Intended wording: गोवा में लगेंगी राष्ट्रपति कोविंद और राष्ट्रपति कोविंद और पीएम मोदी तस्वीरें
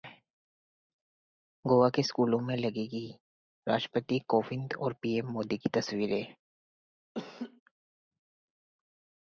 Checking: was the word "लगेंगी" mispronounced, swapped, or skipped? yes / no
no